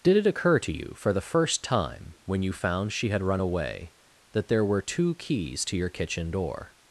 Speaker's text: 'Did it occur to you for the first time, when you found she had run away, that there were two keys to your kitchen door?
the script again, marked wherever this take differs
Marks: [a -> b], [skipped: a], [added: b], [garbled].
'Did it occur to you for the first time, when you found she had run away, that there were two keys to your kitchen door?